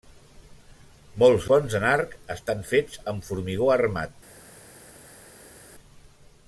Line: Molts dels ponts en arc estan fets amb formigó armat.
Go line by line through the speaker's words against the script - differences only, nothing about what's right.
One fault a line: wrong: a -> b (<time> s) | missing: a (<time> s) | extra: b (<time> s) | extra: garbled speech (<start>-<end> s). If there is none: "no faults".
missing: dels (1.4 s)